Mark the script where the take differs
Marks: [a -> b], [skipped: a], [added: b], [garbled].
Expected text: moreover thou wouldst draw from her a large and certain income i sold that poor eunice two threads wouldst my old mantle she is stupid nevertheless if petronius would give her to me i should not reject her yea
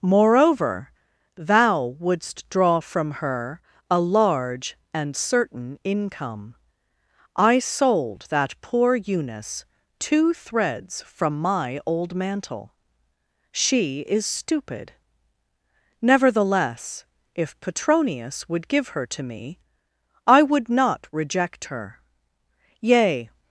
moreover thou wouldst draw from her a large and certain income i sold that poor eunice two threads [wouldst -> from] my old mantle she is stupid nevertheless if petronius would give her to me i [should -> would] not reject her yea